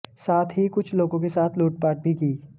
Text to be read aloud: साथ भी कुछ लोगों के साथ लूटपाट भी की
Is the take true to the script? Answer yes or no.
no